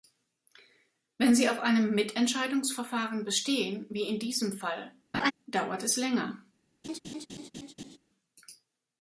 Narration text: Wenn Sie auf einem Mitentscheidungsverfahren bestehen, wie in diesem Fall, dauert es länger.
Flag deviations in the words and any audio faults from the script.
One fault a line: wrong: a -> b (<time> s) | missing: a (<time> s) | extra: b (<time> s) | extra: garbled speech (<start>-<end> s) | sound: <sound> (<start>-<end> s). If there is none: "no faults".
sound: laugh (5.1-5.3 s)
sound: laugh (6.8-8.0 s)